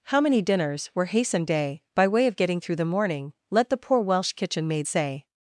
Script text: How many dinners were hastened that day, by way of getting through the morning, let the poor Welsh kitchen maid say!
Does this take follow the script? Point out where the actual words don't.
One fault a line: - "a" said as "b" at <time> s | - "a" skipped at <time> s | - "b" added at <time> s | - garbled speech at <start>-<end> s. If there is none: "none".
- "that" skipped at 1.5 s